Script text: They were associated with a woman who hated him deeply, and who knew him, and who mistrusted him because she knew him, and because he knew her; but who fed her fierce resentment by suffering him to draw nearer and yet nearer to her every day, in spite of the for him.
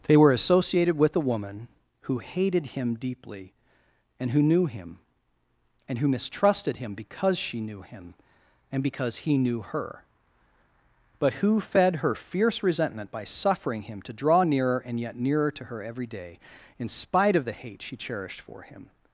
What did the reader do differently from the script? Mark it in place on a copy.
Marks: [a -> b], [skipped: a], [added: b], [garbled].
They were associated with a woman who hated him deeply, and who knew him, and who mistrusted him because she knew him, and because he knew her; but who fed her fierce resentment by suffering him to draw nearer and yet nearer to her every day, in spite of the [added: hate she cherished] for him.